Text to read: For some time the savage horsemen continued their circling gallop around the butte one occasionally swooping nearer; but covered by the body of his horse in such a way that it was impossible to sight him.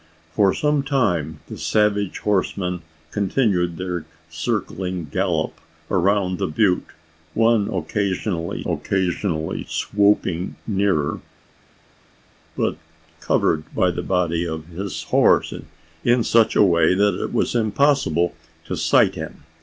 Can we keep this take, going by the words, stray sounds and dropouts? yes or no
no